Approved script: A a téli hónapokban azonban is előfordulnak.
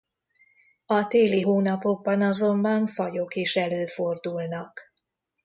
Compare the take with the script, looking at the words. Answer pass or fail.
fail